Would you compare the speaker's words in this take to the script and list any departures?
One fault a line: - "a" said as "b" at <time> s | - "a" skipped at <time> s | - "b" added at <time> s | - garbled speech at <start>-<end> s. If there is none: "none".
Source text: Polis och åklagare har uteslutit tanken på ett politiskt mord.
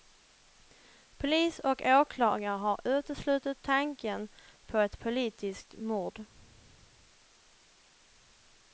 none